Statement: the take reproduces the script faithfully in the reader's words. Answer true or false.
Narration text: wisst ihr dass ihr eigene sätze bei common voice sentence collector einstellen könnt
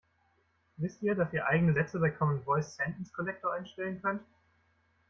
true